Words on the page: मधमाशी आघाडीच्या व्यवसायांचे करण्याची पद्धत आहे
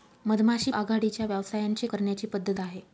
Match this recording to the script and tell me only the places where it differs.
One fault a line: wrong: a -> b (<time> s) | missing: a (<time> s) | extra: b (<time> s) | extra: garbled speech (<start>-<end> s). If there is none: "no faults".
no faults